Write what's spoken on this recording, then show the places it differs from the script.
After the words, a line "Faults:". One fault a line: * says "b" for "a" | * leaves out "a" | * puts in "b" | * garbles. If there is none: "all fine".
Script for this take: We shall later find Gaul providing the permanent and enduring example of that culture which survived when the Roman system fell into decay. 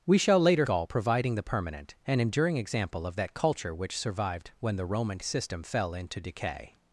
We shall later Gaul providing the permanent and enduring example of that culture which survived when the Roman system fell into decay.
Faults:
* leaves out "find"